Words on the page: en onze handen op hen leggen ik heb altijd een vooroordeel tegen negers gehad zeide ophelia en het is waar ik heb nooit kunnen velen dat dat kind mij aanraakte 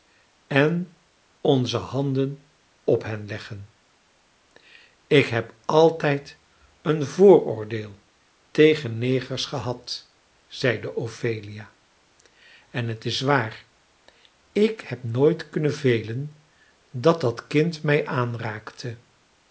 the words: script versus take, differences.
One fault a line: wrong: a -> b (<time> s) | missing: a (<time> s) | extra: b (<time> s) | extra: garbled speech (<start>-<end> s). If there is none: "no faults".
no faults